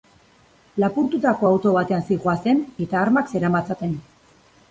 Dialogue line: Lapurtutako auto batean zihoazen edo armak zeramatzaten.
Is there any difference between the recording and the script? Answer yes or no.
yes